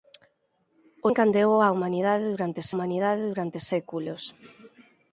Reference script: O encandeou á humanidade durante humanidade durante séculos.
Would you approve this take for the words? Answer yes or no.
yes